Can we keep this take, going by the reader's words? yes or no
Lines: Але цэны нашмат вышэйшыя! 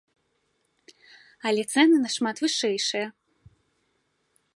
yes